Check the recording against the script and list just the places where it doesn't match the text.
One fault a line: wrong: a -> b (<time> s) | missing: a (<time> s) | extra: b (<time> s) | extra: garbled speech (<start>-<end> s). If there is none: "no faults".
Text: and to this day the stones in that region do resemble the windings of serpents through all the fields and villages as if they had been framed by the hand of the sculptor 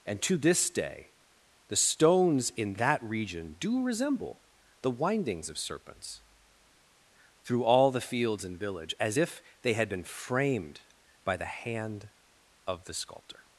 wrong: villages -> village (8.6 s)